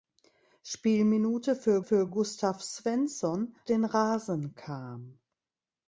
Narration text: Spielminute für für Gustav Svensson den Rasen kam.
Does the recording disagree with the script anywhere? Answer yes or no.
no